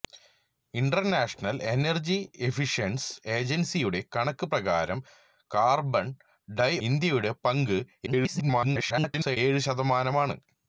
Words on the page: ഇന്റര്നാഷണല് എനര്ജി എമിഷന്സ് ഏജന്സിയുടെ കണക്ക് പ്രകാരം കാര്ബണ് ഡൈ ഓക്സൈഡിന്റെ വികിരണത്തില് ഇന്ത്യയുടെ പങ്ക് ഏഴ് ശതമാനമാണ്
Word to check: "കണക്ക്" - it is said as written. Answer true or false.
true